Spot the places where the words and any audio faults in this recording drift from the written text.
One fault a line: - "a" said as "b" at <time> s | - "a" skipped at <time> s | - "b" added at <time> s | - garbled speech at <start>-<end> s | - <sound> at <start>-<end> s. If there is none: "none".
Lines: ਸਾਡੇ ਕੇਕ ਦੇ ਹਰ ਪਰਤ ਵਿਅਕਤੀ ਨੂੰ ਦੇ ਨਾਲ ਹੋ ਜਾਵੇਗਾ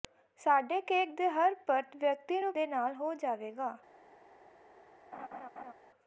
- laugh at 5.1-5.7 s